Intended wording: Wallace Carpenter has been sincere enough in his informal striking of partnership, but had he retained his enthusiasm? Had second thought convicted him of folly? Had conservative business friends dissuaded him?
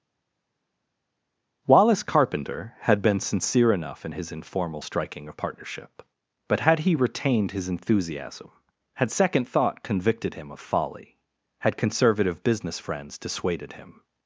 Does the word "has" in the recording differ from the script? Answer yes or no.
yes